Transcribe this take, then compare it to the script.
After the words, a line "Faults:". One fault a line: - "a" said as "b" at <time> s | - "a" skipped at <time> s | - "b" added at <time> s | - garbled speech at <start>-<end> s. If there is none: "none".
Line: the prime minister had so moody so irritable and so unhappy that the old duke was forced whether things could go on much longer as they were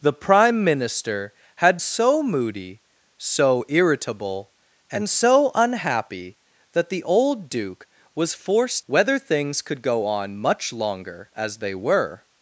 the prime minister had so moody so irritable and so unhappy that the old duke was forced whether things could go on much longer as they were
Faults:
none